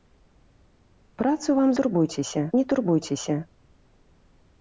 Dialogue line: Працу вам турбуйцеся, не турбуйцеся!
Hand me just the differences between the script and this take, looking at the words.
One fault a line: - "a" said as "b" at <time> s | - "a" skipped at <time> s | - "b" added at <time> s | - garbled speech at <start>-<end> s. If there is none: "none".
none